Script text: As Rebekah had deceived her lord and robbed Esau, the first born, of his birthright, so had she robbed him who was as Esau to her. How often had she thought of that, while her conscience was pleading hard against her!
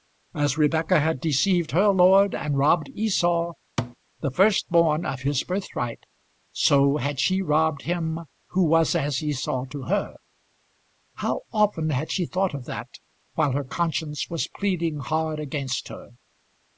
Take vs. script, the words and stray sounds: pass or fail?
fail